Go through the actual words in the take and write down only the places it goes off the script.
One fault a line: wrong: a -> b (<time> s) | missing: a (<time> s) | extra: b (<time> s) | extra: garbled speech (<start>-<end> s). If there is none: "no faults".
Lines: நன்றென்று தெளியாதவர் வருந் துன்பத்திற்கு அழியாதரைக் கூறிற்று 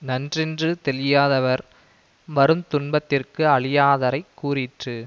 no faults